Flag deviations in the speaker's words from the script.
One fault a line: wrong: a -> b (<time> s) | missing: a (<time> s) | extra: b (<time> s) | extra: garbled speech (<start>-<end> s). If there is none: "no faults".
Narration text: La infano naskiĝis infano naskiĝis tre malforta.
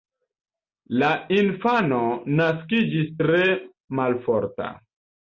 missing: infano naskiĝis (3.1 s)